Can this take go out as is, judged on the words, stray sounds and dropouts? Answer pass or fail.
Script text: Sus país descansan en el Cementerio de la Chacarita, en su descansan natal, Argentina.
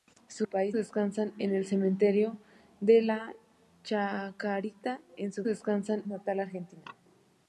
pass